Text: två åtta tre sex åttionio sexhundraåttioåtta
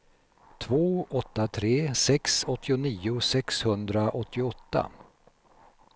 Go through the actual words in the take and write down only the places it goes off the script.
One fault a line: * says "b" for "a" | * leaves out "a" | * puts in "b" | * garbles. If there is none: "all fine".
all fine